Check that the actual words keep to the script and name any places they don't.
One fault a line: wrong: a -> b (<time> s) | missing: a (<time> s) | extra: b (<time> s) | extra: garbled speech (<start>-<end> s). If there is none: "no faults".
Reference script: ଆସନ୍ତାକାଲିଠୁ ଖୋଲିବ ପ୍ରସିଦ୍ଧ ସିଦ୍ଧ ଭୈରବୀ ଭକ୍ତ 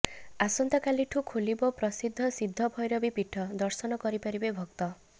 extra: ପୀଠ ଦର୍ଶନ କରିପାରିବେ (3.2 s)